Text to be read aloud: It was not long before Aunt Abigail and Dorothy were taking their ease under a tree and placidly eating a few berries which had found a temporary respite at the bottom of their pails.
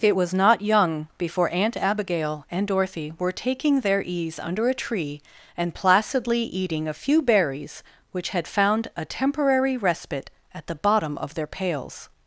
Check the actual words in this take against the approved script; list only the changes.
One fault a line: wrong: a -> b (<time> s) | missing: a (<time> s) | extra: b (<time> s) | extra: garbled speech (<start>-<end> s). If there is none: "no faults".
wrong: long -> young (0.6 s)